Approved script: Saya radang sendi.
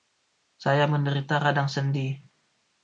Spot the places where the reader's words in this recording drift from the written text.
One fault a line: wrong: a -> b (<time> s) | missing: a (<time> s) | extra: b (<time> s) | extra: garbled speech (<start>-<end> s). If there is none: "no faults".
extra: menderita (0.9 s)